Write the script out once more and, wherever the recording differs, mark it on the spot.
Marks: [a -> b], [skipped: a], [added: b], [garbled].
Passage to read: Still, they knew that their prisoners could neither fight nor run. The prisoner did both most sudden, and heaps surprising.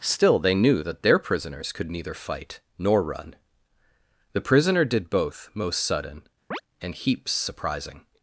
Still, they knew that their prisoners could neither fight nor run. The prisoner did both most sudden, and heaps surprising.